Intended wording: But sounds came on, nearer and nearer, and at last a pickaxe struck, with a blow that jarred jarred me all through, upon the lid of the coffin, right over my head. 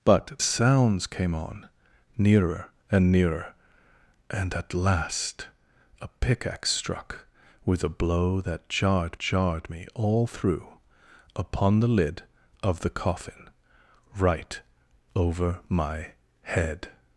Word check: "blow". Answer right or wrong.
right